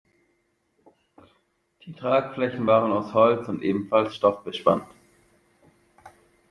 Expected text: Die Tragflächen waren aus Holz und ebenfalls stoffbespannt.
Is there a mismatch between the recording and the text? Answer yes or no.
no